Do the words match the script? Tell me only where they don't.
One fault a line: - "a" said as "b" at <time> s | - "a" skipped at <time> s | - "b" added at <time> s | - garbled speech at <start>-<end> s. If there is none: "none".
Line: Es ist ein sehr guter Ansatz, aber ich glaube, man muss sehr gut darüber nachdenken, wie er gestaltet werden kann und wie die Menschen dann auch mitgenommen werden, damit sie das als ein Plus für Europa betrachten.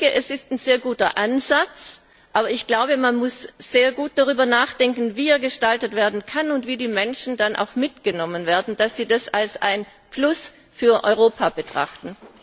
none